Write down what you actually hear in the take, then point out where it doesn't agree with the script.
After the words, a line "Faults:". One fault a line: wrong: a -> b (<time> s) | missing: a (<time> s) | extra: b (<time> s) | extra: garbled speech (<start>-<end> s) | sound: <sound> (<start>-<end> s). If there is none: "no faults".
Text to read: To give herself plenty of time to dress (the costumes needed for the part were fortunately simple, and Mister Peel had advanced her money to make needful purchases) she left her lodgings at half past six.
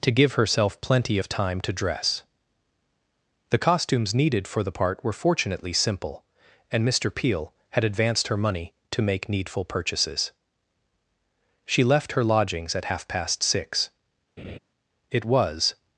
To give herself plenty of time to dress (the costumes needed for the part were fortunately simple, and Mister Peel had advanced her money to make needful purchases) she left her lodgings at half past six. It was
Faults:
sound: laugh (14.4-14.6 s)
extra: It was (15.1 s)